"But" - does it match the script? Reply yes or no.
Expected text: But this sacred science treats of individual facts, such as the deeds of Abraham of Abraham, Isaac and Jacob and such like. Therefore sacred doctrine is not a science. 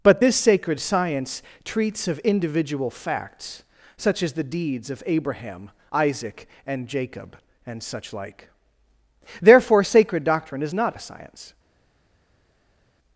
yes